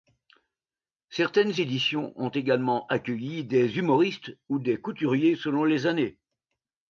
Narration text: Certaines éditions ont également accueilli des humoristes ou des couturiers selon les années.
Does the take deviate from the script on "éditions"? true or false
false